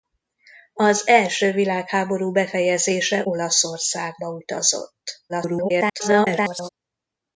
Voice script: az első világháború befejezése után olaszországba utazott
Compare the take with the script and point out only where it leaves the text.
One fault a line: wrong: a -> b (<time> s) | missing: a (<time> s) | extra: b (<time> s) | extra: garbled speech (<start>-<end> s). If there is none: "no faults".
missing: után (3.2 s)
extra: garbled speech (5.3-6.7 s)